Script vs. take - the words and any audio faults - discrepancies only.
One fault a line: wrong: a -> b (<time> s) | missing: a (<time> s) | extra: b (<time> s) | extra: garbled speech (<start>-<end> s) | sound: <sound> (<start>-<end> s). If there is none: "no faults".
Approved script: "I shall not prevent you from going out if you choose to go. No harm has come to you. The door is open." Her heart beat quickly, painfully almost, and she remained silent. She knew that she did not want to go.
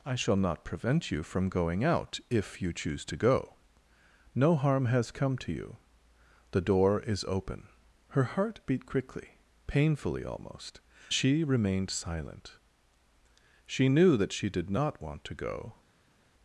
missing: and (10.8 s)